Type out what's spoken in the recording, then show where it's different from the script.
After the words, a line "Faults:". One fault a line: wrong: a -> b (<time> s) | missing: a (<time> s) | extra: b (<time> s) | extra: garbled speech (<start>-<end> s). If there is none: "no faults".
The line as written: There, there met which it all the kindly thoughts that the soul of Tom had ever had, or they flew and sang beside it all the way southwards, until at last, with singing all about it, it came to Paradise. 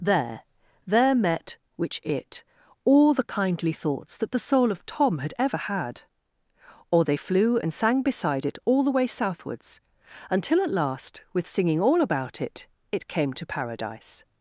There, there met which it all the kindly thoughts that the soul of Tom had ever had, or they flew and sang beside it all the way southwards, until at last, with singing all about it, it came to Paradise.
Faults:
no faults